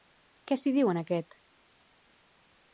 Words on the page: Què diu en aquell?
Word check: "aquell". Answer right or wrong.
wrong